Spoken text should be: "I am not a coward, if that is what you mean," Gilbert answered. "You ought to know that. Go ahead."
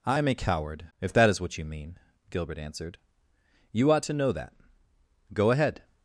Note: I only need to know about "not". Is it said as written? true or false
false